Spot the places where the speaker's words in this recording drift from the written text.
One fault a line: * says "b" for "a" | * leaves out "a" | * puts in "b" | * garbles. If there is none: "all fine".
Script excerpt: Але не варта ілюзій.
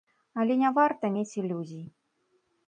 * puts in "мець"